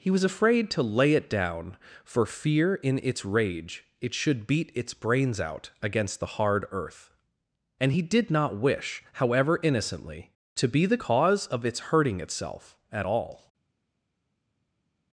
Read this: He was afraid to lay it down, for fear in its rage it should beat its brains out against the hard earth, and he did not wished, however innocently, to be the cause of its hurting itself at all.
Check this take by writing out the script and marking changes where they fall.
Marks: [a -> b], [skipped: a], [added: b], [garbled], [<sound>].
He was afraid to lay it down, for fear in its rage it should beat its brains out against the hard earth, and he did not [wished, -> wish] however innocently, to be the cause of its hurting itself at all.